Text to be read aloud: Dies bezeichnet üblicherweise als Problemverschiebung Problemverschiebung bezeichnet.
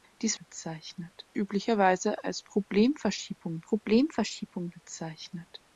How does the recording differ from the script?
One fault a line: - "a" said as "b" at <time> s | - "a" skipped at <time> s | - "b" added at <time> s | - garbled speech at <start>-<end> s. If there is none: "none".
none